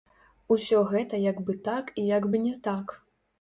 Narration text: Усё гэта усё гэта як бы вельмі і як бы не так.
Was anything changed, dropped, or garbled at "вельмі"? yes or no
yes